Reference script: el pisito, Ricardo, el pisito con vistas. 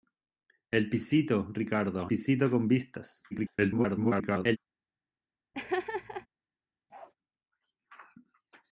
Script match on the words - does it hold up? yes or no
no